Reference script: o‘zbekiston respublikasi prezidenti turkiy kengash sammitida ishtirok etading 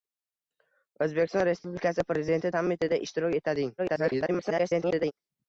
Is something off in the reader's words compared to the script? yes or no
yes